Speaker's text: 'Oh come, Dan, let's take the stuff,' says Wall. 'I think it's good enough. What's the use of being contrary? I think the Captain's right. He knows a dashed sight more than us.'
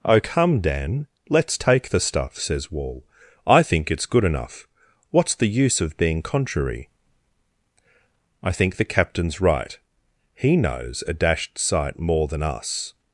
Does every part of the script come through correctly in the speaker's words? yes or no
yes